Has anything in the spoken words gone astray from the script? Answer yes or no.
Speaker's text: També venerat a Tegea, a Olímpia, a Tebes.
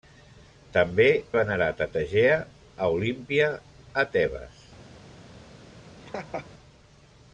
no